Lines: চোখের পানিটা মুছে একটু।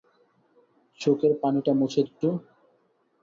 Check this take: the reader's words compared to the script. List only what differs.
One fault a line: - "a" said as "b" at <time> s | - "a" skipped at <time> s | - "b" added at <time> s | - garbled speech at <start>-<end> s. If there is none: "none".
none